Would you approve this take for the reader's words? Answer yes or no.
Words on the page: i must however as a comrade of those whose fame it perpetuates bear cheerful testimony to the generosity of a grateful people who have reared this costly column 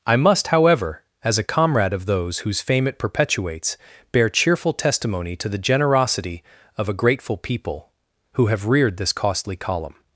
yes